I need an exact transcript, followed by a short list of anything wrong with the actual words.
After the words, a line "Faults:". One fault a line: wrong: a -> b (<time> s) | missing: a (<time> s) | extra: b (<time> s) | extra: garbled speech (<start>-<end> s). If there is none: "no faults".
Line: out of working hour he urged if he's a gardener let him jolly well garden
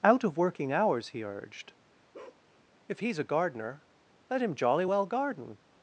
out of working hours he urged if he's a gardener let him jolly well garden
Faults:
wrong: hour -> hours (0.7 s)